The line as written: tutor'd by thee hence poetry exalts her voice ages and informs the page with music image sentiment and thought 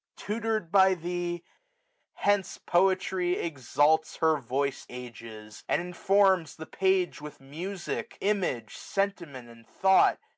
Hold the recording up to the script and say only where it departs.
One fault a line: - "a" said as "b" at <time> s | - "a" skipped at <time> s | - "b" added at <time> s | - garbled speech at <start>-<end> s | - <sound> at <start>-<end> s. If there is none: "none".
none